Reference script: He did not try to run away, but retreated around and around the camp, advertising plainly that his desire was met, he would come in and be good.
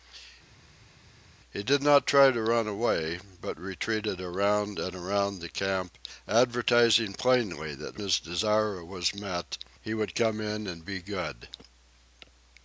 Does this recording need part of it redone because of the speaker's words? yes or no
no